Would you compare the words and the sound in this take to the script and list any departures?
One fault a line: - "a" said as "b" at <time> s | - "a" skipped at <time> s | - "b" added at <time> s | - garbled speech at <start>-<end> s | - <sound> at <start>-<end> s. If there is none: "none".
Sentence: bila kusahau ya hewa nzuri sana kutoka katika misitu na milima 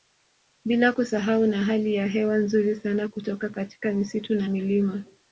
- "na hali" added at 1.5 s